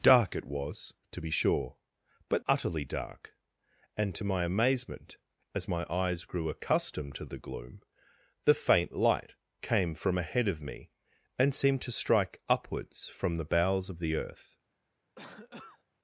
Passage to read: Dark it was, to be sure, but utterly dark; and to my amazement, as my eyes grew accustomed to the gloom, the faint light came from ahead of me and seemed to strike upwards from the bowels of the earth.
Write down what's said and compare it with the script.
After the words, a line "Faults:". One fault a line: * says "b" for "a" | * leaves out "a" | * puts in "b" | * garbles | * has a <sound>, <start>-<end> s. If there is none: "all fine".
Dark it was, to be sure, but utterly dark; and to my amazement, as my eyes grew accustomed to the gloom, the faint light came from ahead of me and seemed to strike upwards from the bowels of the earth.
Faults:
* has a cough, 15.1-15.8 s